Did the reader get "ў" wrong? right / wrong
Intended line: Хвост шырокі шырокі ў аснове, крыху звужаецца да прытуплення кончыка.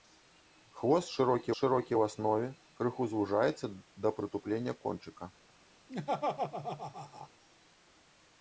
right